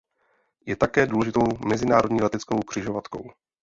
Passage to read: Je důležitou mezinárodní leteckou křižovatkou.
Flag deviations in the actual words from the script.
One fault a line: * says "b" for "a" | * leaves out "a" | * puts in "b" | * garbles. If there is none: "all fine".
* puts in "také"